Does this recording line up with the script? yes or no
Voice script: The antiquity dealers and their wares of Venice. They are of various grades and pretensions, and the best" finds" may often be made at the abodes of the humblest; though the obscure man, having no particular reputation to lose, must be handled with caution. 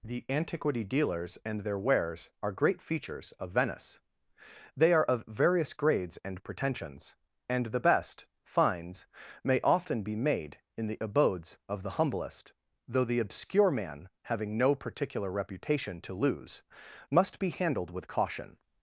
no